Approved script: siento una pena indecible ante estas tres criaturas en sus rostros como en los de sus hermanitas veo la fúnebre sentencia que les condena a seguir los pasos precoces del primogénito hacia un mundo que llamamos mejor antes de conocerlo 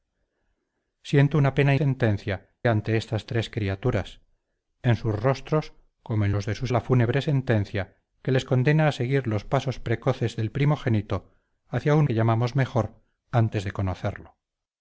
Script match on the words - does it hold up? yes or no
no